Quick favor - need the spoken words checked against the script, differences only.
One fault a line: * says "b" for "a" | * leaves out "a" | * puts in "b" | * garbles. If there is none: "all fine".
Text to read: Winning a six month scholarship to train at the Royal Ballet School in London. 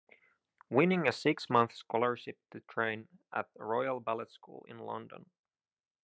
all fine